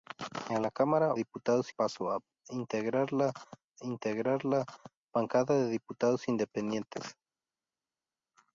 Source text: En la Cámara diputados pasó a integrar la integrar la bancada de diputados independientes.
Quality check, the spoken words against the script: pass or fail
pass